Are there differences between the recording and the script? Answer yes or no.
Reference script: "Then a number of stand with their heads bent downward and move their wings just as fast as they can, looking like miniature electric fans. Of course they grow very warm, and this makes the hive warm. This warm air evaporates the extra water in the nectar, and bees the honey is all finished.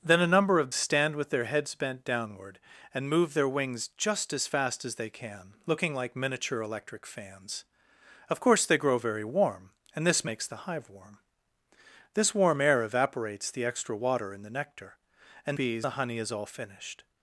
no